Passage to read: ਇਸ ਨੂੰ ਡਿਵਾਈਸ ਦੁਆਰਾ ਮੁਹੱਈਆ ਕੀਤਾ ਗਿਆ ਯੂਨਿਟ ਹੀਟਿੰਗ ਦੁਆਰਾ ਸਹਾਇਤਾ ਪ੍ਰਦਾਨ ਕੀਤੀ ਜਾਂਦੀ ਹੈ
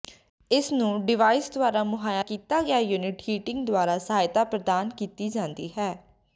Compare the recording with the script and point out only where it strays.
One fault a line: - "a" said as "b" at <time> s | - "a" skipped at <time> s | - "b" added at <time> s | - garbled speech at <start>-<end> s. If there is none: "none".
none